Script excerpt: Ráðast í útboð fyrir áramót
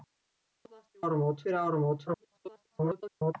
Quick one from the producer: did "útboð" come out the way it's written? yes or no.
no